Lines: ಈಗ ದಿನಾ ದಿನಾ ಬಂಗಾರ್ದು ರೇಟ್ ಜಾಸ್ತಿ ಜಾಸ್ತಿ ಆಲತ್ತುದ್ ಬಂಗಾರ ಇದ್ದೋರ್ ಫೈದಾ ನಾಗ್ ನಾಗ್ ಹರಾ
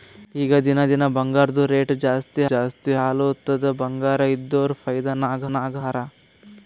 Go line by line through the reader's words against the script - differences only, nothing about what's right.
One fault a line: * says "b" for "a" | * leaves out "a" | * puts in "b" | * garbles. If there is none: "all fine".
all fine